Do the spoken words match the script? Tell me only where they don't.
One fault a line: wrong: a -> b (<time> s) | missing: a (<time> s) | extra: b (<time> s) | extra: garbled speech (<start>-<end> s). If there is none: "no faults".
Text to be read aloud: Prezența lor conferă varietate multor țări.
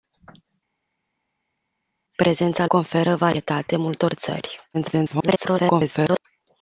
missing: lor (2.7 s)
extra: garbled speech (4.7-6.2 s)